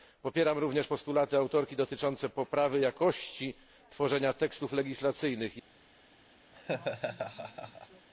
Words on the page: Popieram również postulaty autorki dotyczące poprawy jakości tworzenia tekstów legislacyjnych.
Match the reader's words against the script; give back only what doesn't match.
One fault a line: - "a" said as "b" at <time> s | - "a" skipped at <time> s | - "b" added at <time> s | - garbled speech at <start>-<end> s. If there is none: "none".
none